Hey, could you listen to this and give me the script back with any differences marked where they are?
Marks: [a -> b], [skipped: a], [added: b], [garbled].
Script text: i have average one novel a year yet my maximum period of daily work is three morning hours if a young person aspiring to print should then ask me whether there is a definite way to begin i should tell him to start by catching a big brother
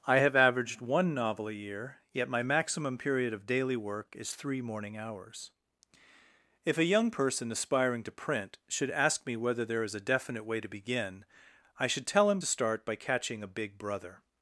i have [average -> averaged] one novel a year yet my maximum period of daily work is three morning hours if a young person aspiring to print should [skipped: then] ask me whether there is a definite way to begin i should tell him to start by catching a big brother